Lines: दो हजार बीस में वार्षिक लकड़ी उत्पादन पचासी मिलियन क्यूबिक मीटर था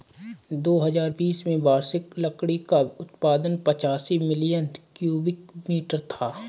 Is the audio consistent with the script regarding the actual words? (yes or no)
no